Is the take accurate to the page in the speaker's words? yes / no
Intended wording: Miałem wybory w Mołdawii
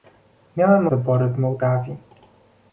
yes